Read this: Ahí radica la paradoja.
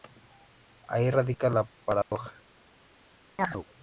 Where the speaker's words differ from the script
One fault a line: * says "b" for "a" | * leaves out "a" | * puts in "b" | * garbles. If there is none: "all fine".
all fine